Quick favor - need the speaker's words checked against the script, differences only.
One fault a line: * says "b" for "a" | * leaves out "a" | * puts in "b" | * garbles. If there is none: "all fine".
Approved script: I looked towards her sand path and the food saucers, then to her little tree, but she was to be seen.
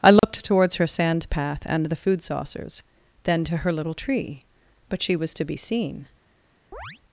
all fine